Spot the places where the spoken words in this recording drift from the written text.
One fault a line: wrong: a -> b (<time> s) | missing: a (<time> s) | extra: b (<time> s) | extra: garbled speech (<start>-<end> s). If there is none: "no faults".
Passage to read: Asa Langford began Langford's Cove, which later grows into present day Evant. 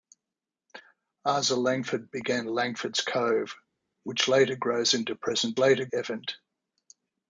wrong: day -> later (5.6 s)